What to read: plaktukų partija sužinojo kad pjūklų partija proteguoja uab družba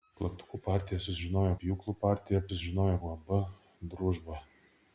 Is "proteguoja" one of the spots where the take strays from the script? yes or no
yes